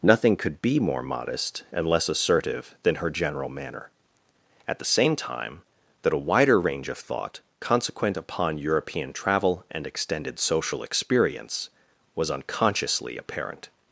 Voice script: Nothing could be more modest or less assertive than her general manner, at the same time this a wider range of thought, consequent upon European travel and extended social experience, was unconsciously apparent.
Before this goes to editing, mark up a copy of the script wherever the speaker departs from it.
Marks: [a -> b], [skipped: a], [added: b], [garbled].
Nothing could be more modest [or -> and] less assertive than her general manner, at the same time [this -> that] a wider range of thought, consequent upon European travel and extended social experience, was unconsciously apparent.